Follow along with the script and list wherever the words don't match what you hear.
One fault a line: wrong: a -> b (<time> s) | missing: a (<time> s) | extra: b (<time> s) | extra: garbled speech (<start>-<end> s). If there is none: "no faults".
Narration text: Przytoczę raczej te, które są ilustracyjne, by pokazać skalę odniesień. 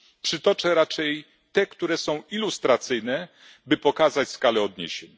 no faults